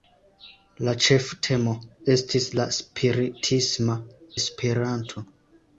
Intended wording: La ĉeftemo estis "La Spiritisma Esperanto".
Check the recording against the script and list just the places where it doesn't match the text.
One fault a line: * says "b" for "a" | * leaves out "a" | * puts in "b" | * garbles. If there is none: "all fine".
all fine